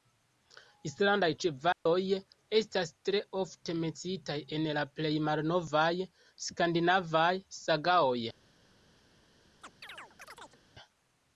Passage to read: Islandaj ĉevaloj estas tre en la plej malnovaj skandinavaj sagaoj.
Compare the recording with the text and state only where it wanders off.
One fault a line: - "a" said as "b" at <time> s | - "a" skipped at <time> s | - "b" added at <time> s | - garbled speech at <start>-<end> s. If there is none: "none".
- "ofte menciitaj" added at 3.4 s